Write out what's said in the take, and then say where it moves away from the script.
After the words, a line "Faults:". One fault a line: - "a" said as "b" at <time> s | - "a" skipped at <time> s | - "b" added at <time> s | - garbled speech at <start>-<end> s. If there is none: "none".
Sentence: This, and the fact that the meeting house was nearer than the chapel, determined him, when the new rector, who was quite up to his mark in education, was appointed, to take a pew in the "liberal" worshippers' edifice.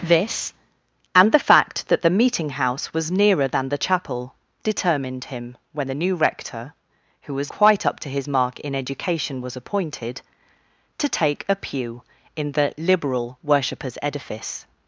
This, and the fact that the meeting house was nearer than the chapel, determined him, when the new rector, who was quite up to his mark in education, was appointed, to take a pew in the "liberal" worshippers' edifice.
Faults:
none